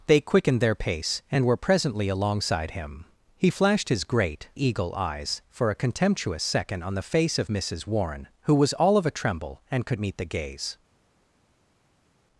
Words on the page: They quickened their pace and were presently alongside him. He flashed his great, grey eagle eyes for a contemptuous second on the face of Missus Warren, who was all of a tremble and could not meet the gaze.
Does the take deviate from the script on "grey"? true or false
true